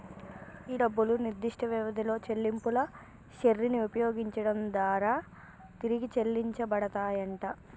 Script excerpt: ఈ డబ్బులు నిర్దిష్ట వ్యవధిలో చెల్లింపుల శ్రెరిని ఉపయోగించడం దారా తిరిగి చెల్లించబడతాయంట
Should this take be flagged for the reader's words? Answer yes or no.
no